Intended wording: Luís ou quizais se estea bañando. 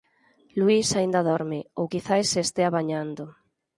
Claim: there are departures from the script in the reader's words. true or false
true